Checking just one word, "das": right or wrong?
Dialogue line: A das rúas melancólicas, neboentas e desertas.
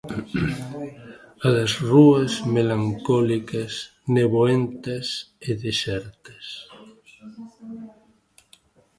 right